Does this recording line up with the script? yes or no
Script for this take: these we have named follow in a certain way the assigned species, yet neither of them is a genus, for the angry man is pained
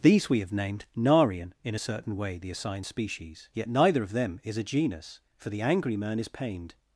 no